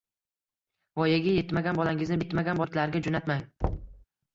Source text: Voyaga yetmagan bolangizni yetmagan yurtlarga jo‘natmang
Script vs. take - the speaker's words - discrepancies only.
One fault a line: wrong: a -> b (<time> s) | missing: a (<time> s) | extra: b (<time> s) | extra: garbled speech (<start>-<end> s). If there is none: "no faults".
no faults